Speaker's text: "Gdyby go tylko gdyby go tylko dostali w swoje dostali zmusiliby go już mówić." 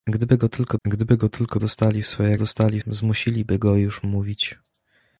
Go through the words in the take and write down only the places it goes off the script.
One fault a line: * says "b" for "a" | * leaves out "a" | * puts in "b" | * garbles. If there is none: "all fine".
all fine